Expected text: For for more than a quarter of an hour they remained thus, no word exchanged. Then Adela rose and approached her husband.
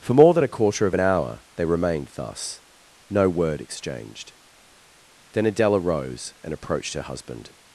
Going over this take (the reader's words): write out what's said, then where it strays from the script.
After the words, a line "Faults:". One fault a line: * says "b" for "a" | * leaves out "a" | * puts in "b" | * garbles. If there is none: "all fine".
For more than a quarter of an hour they remained thus, no word exchanged. Then Adela rose and approached her husband.
Faults:
* leaves out "for"